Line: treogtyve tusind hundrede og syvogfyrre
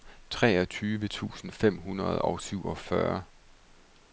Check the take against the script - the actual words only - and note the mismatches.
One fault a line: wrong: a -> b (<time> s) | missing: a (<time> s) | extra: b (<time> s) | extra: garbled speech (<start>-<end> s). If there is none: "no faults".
extra: fem (1.5 s)